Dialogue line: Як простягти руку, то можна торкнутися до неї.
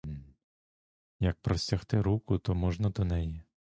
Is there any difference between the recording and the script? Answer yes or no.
yes